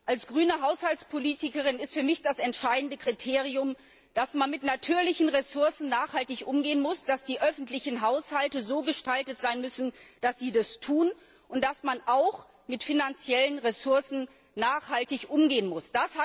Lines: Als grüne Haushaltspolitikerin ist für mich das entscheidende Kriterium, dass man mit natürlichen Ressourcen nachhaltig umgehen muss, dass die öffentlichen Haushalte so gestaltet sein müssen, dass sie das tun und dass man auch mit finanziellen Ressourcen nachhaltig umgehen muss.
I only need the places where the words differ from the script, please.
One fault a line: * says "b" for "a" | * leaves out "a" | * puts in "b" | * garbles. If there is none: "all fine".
all fine